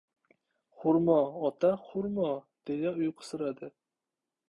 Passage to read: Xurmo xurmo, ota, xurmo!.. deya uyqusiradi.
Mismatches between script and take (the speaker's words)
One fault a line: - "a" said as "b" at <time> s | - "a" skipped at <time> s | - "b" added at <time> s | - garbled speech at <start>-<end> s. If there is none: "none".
- "xurmo" skipped at 1.2 s